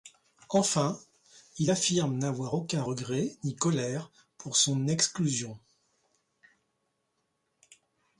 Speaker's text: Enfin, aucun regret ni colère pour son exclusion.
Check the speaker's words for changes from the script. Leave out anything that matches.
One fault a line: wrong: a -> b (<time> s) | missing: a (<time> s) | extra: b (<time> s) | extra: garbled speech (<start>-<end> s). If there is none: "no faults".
extra: il affirme n'avoir (1.6 s)